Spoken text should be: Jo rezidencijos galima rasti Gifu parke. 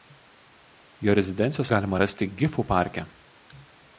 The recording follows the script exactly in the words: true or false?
true